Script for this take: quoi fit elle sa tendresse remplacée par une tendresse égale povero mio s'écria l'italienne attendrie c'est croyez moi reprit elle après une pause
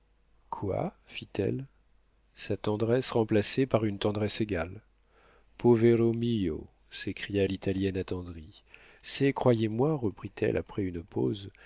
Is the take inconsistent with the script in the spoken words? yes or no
no